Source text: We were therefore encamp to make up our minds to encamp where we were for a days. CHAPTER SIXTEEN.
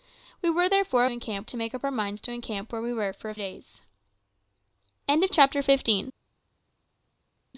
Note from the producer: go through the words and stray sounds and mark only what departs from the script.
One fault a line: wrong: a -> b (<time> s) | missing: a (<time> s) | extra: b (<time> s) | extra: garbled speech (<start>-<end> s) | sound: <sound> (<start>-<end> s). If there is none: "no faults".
no faults